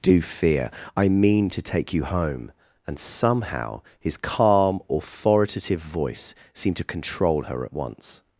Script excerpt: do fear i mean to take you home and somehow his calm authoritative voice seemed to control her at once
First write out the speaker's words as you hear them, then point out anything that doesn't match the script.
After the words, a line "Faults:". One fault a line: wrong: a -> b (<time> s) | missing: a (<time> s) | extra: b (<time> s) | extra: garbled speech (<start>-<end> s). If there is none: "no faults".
do fear i mean to take you home and somehow his calm authoritative voice seemed to control her at once
Faults:
no faults